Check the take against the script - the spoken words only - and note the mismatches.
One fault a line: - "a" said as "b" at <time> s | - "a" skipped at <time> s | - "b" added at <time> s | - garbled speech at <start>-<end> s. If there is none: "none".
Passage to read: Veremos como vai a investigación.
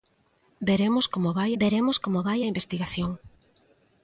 - "veremos como vai" added at 1.6 s